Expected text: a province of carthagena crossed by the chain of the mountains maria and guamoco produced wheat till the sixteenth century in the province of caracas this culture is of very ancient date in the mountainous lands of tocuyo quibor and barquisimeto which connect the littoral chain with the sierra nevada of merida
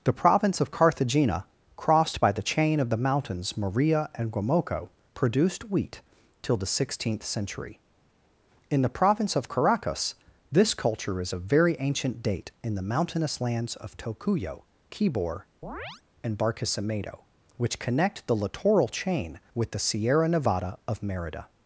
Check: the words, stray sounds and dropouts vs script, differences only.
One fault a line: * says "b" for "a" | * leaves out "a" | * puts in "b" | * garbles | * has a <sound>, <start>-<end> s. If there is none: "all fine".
* says "the" for "a"
* has a chirp, 15.6-16.0 s